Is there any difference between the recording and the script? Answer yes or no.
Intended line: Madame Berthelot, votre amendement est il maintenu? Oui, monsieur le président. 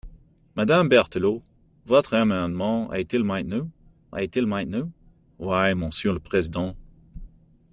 yes